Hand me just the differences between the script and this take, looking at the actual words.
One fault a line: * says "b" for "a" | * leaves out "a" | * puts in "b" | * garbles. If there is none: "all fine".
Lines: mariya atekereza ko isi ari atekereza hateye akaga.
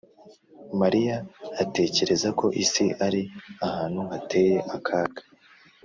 * says "ahantu" for "atekereza"